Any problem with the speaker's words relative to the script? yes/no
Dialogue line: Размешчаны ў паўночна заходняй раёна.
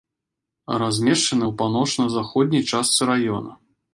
yes